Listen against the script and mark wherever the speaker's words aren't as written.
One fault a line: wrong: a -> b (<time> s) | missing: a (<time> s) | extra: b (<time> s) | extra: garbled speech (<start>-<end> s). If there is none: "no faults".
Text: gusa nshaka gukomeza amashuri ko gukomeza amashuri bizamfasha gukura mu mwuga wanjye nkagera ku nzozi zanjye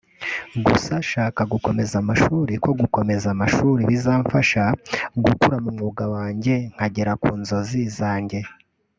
no faults